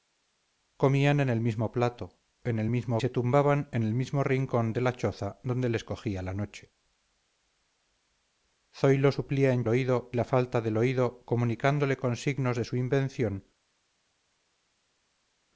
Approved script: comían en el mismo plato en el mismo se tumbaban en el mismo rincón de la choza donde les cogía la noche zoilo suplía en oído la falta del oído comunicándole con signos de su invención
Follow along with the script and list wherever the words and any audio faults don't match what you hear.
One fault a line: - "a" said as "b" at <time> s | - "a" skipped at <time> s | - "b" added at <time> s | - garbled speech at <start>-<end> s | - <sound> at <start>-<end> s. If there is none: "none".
none